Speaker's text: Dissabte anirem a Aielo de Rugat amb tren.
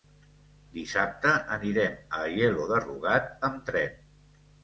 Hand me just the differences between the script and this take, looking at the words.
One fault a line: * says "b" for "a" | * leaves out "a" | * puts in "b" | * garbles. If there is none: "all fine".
all fine